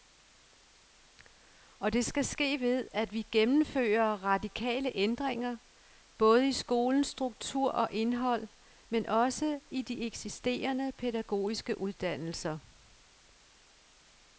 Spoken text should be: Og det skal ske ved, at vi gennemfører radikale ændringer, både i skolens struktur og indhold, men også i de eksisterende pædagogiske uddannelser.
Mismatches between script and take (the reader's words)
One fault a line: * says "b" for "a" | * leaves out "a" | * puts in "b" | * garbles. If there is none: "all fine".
all fine